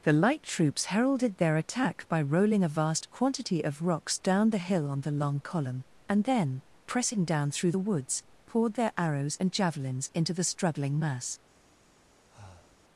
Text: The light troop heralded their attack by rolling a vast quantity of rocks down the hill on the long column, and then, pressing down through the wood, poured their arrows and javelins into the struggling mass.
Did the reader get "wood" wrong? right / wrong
wrong